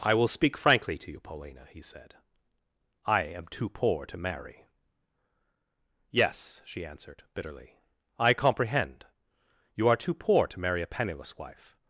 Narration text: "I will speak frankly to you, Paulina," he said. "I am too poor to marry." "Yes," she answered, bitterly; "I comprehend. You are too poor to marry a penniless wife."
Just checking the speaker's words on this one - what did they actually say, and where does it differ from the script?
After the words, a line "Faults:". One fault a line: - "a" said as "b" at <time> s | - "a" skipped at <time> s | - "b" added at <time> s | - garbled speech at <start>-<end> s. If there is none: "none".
"I will speak frankly to you, Paulina," he said. "I am too poor to marry." "Yes," she answered, bitterly; "I comprehend. You are too poor to marry a penniless wife."
Faults:
none